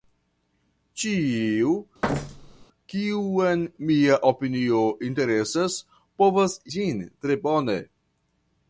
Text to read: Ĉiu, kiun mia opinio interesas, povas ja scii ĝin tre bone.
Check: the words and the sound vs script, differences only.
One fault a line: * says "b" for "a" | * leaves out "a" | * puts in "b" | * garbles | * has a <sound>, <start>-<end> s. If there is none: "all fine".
* has a thud, 2.0-2.7 s
* leaves out "ja scii"